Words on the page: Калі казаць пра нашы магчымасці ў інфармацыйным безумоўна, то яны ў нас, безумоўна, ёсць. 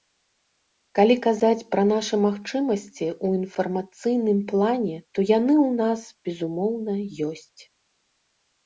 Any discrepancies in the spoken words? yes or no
yes